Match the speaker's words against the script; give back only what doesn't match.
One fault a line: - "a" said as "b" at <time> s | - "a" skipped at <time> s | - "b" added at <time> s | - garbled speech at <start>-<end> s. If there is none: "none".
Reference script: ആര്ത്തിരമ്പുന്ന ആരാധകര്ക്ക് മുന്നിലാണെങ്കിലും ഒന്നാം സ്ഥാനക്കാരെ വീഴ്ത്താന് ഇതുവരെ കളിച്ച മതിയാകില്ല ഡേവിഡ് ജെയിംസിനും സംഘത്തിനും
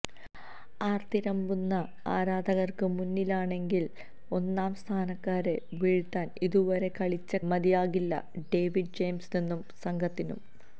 none